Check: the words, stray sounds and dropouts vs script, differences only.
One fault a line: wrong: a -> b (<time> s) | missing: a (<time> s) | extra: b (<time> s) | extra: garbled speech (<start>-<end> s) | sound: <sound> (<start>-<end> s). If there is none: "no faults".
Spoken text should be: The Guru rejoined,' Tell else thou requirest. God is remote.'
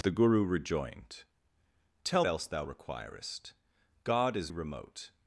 no faults